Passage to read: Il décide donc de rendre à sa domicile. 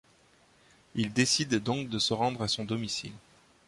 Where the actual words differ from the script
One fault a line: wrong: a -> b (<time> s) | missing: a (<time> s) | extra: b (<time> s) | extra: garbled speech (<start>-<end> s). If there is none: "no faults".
extra: se (2.0 s)
wrong: sa -> son (2.5 s)